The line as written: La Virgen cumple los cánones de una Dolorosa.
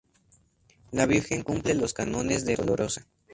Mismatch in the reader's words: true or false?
true